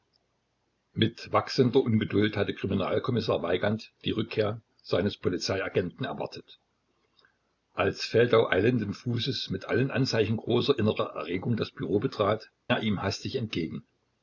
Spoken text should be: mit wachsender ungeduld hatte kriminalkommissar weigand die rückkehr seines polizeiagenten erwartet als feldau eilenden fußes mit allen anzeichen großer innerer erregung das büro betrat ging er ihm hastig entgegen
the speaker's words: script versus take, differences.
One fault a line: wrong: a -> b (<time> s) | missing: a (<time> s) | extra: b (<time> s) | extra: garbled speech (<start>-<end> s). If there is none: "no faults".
missing: ging (12.5 s)